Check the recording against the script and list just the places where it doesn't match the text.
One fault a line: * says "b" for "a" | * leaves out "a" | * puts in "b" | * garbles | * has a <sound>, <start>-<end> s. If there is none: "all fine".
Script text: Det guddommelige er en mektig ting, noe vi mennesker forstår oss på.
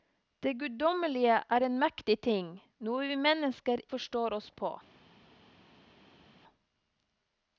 all fine